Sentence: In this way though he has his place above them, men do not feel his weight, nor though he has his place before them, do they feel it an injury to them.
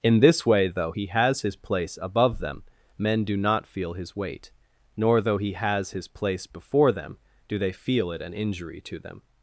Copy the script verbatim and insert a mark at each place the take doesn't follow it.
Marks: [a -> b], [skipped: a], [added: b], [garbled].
In this way though he has his place above them, men do not feel his weight, nor though he has his place before them, do they feel it an injury to them.